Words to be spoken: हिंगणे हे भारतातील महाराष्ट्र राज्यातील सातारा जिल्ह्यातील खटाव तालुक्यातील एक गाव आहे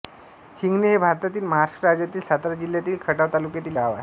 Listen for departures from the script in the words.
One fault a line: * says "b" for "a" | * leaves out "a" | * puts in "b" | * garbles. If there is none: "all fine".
* leaves out "एक"